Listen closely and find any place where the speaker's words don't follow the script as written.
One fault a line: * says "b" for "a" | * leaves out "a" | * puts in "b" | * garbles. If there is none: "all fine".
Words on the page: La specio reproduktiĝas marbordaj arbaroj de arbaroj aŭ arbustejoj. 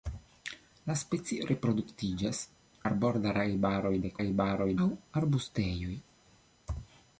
all fine